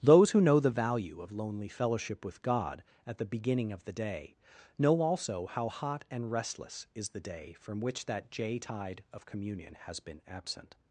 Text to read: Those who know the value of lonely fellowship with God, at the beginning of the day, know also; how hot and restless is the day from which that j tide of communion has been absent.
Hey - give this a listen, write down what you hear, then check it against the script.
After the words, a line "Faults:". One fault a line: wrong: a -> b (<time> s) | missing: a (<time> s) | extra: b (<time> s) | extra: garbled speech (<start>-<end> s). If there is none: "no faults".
Those who know the value of lonely fellowship with God, at the beginning of the day, know also; how hot and restless is the day from which that j tide of communion has been absent.
Faults:
no faults